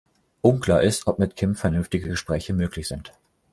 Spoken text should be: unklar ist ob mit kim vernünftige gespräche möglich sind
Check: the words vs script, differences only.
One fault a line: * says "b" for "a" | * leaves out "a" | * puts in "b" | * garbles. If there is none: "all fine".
all fine